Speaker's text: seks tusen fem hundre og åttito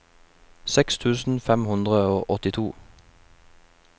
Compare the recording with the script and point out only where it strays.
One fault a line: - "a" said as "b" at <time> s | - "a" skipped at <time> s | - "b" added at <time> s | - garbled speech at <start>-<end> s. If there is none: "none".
none